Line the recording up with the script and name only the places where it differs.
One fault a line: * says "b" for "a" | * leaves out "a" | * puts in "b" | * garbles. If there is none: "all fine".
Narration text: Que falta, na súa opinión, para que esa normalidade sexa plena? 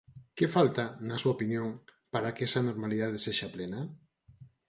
all fine